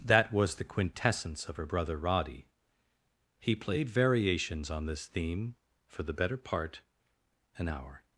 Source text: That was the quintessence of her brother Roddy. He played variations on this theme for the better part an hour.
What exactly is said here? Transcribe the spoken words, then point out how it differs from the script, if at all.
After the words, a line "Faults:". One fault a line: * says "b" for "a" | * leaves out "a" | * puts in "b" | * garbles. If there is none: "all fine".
That was the quintessence of her brother Roddy. He played variations on this theme for the better part an hour.
Faults:
all fine